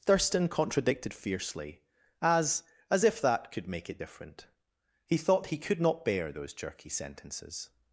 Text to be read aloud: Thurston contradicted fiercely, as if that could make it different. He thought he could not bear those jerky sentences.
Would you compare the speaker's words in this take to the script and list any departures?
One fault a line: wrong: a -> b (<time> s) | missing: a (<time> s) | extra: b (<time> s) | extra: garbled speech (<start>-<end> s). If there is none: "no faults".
extra: as (2.9 s)